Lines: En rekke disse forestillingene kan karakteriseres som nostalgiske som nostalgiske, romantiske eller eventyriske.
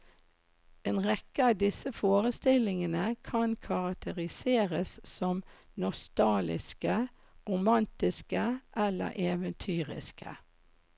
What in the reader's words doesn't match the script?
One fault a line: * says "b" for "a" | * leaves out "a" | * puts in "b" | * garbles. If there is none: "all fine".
* puts in "av"
* leaves out "som nostalgiske"